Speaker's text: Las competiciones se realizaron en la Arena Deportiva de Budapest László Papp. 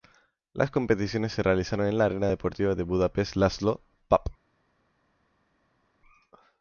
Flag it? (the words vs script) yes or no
no